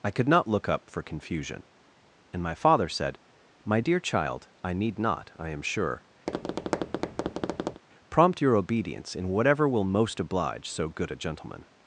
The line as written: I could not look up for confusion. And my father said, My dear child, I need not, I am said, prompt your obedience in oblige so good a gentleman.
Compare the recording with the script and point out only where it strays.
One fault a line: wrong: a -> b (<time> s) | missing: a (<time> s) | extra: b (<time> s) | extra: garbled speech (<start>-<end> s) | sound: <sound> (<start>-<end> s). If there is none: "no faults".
wrong: said -> sure (5.6 s)
sound: tap (6.3-7.8 s)
extra: whatever will most (9.3 s)